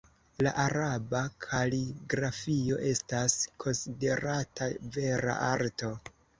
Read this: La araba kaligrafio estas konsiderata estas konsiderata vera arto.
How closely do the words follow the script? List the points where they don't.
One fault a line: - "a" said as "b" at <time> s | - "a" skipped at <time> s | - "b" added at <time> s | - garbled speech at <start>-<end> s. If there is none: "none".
- "estas konsiderata" skipped at 4.7 s